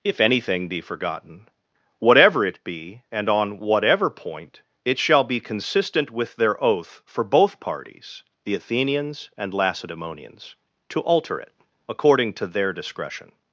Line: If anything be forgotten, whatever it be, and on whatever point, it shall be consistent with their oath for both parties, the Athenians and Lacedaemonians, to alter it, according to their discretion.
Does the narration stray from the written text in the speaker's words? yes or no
no